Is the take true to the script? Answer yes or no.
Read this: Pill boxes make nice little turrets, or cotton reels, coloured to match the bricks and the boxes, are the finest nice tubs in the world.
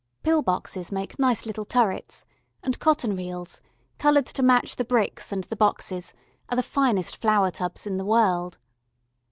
no